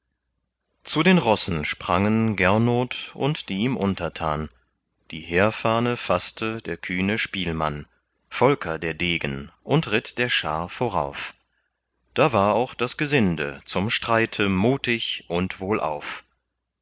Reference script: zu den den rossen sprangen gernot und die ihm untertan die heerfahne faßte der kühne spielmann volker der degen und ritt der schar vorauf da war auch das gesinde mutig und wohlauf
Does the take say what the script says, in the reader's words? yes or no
no